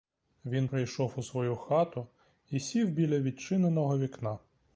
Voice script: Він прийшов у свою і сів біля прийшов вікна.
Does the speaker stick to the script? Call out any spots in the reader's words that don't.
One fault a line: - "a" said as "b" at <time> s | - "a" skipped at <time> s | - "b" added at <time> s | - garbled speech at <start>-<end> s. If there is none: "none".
- "хату" added at 1.6 s
- "прийшов" said as "відчиненого" at 3.2 s